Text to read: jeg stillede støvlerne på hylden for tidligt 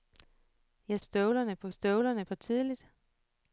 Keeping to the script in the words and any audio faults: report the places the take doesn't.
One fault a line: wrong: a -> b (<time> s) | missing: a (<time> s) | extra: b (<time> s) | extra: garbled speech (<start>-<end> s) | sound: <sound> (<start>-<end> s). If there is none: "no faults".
missing: stillede (1.0 s)
wrong: hylden -> støvlerne (1.7 s)